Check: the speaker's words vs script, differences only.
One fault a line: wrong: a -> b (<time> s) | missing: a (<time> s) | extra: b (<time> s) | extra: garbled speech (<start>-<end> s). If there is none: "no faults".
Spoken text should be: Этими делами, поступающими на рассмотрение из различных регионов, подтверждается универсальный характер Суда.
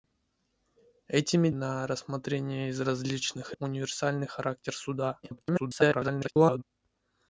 missing: делами поступающими (1.5 s)
missing: регионов подтверждается (3.5 s)
extra: garbled speech (5.2-6.6 s)